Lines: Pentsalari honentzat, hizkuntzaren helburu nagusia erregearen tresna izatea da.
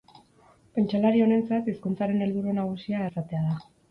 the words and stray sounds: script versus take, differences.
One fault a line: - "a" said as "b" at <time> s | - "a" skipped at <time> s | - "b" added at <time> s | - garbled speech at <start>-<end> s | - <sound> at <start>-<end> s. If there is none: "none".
- "erregearen tresna" skipped at 3.0 s